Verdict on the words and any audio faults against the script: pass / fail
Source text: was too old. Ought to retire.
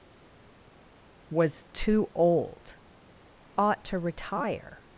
pass